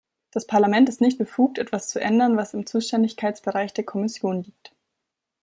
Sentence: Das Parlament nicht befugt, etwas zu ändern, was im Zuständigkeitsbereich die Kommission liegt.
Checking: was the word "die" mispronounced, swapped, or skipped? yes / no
yes